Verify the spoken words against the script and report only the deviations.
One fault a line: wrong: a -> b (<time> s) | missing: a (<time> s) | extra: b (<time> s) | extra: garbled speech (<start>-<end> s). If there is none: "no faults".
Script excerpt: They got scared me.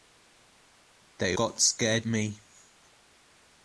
no faults